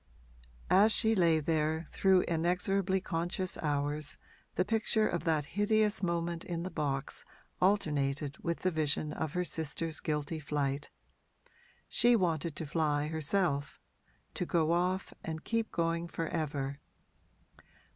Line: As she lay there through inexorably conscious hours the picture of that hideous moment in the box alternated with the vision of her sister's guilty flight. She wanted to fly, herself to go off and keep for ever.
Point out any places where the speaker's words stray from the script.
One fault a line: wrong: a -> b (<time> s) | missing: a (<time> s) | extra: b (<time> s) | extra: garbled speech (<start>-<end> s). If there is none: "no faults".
extra: going (15.7 s)